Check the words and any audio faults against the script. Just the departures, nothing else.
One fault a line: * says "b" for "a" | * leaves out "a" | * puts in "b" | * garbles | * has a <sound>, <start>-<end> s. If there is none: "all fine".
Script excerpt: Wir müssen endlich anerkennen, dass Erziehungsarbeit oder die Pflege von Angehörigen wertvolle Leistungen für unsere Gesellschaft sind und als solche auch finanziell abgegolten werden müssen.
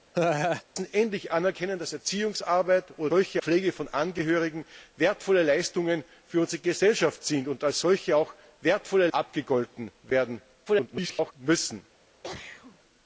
* has a laugh, 0.1-0.6 s
* says "solche" for "die"
* says "wertvolle" for "finanziell"
* garbles
* has a sneeze, 12.2-12.8 s